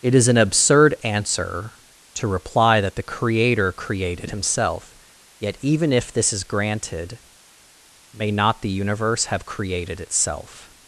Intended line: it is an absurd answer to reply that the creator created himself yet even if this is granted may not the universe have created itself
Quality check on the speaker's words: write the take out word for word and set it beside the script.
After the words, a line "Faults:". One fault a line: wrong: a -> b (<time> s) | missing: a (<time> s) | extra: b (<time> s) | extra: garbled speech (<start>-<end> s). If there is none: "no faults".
it is an absurd answer to reply that the creator created himself yet even if this is granted may not the universe have created itself
Faults:
no faults